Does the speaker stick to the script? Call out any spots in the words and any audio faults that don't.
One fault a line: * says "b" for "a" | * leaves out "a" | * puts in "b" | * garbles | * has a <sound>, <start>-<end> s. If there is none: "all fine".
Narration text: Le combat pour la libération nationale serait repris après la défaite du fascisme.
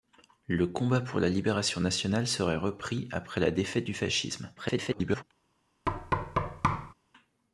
* garbles
* has a thud, 5.9-6.9 s